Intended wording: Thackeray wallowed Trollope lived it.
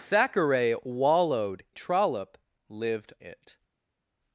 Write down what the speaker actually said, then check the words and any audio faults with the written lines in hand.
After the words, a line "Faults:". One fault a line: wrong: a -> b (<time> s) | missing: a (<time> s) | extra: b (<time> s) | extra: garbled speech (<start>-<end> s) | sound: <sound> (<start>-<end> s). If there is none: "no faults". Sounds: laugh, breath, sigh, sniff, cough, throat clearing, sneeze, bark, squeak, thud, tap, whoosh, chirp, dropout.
Thackeray wallowed Trollope lived it.
Faults:
no faults